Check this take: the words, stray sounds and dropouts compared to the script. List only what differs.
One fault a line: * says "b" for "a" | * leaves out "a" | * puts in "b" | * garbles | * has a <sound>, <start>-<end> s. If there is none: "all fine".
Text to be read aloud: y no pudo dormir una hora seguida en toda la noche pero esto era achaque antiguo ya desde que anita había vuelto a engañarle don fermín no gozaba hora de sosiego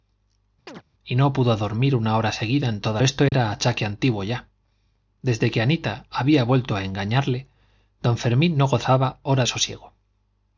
* has a chirp, 0.7-0.8 s
* leaves out "la noche pero"
* has a dropout, 3.3-3.3 s
* leaves out "de"